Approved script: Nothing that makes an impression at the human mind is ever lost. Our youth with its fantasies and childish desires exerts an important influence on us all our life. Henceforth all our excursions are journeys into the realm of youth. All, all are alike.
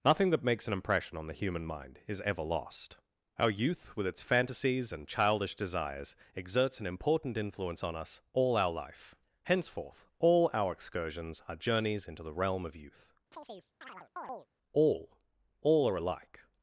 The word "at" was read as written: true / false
false